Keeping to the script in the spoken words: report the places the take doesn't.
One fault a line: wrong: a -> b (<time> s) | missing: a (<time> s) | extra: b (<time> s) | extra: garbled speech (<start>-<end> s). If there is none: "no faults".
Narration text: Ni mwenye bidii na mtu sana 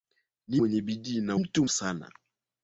no faults